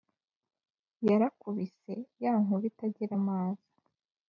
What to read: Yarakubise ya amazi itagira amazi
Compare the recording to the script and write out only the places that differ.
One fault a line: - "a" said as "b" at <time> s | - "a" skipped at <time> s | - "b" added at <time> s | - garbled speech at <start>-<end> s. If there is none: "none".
- "amazi" said as "nkuba" at 2.4 s